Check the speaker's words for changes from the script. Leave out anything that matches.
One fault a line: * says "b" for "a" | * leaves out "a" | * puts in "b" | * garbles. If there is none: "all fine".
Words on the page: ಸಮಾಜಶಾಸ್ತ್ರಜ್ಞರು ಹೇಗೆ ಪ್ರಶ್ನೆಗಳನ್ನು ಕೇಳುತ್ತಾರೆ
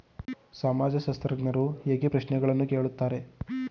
all fine